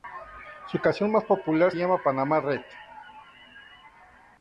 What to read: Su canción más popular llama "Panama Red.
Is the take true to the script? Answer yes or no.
yes